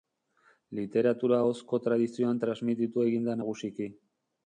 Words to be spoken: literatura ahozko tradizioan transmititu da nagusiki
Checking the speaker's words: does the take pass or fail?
fail